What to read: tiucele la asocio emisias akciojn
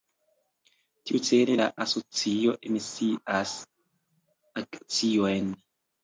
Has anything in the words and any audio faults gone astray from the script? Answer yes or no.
no